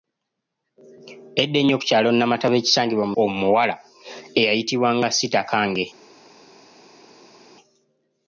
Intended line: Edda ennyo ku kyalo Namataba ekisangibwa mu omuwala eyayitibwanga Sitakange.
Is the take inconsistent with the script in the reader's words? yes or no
no